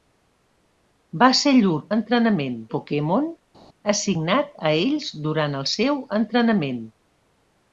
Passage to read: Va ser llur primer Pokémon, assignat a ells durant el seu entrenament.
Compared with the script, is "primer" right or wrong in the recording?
wrong